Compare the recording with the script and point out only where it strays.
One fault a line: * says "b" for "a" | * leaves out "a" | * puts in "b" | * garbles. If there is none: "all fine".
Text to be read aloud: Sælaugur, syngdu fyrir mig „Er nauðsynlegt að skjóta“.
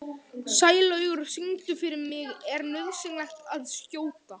all fine